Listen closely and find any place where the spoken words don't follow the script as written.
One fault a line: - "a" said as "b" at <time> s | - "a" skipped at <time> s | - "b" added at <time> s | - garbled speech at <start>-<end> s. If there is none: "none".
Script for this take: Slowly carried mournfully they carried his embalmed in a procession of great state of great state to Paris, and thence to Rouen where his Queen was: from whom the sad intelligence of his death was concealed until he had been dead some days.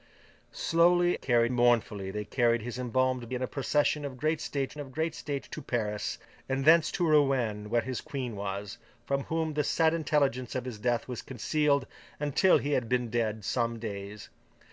none